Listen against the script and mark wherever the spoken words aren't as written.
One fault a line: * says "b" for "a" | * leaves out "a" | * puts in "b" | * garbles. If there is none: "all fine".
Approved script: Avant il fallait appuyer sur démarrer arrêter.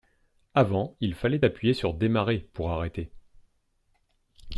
* puts in "pour"